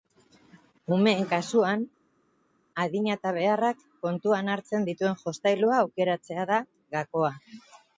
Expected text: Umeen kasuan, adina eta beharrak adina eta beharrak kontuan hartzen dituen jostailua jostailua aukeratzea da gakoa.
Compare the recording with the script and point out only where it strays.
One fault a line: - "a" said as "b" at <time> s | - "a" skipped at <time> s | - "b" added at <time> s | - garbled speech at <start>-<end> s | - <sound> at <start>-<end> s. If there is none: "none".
- "adina eta beharrak" skipped at 3.8 s
- "jostailua" skipped at 5.8 s